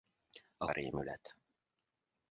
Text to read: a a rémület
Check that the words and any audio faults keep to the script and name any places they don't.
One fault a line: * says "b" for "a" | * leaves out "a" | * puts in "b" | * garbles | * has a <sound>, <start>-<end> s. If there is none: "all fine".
all fine